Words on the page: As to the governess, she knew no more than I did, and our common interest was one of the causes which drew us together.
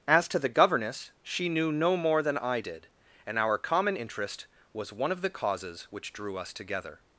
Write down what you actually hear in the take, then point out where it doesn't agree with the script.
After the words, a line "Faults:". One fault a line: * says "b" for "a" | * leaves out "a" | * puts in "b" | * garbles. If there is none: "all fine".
As to the governess, she knew no more than I did, and our common interest was one of the causes which drew us together.
Faults:
all fine